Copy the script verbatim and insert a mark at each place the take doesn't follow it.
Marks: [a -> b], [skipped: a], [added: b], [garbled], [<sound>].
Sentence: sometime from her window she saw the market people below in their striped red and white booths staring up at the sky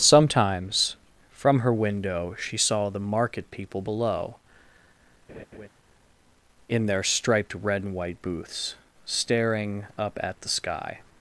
[sometime -> sometimes] from her window she saw the market people below [laugh] in their striped red and white booths staring up at the sky